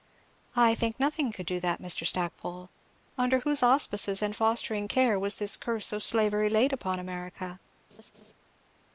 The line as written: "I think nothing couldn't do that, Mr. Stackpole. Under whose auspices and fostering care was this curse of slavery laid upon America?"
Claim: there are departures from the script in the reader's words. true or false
true